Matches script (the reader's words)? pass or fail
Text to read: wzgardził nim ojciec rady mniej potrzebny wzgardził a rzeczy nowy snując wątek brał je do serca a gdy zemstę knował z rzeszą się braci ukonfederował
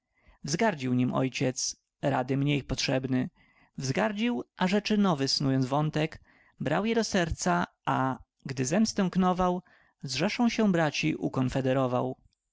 pass